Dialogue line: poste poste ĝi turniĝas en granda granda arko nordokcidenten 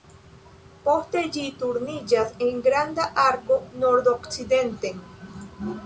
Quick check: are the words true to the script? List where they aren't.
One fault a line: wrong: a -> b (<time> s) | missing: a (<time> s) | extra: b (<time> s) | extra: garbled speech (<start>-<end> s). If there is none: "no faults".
missing: poste (1.2 s)
missing: granda (3.1 s)